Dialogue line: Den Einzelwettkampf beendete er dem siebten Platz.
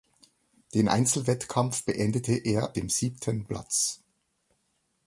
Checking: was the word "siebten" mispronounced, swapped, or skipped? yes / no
no